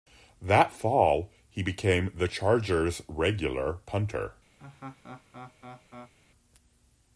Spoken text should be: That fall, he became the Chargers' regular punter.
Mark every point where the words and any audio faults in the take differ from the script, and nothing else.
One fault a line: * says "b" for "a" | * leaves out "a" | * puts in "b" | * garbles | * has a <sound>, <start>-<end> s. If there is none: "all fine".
* has a laugh, 4.6-6.1 s